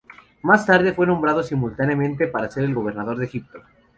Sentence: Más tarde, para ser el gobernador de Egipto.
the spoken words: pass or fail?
fail